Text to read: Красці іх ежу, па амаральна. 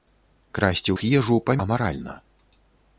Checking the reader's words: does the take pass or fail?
pass